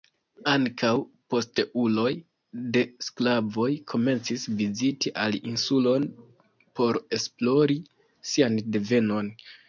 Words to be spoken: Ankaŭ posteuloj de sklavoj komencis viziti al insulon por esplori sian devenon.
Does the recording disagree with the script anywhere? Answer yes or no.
no